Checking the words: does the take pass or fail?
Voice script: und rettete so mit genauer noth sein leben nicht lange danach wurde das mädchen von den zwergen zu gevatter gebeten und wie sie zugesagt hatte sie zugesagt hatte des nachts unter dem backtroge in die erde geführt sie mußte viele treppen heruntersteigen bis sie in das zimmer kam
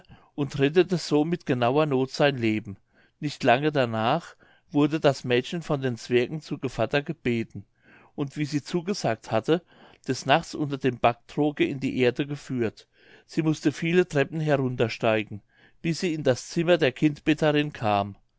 fail